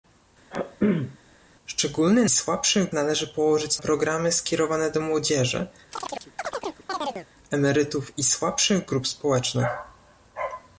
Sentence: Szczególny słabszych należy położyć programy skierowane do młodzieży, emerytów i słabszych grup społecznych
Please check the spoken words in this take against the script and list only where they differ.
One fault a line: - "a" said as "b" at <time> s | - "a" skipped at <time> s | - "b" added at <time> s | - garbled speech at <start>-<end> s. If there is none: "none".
none